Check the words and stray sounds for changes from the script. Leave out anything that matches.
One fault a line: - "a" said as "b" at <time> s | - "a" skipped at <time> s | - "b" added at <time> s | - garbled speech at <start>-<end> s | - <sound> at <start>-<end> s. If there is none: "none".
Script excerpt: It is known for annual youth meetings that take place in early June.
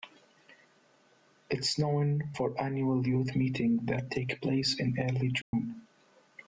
- dropout at 5.4-5.5 s